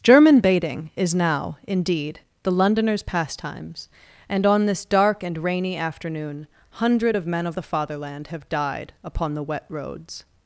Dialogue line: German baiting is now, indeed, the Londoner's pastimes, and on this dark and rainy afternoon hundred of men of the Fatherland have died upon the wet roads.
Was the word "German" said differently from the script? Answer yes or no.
no